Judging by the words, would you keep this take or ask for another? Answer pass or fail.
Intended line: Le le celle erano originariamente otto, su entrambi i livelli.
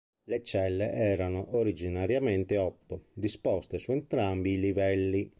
fail